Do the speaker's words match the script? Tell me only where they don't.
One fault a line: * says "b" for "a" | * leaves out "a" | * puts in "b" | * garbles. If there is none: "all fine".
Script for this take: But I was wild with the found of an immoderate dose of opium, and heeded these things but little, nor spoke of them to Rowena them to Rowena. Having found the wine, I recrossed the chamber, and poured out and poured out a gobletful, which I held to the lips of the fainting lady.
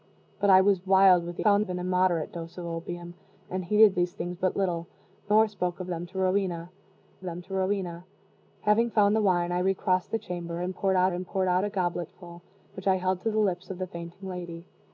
all fine